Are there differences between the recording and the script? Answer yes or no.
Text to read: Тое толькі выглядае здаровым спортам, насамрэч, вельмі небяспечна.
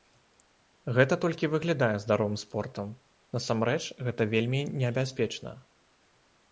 yes